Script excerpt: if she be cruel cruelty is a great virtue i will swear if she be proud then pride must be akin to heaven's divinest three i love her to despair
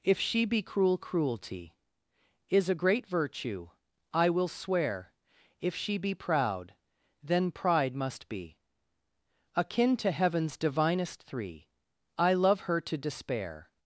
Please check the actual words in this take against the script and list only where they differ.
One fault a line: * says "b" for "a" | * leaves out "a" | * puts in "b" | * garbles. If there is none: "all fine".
all fine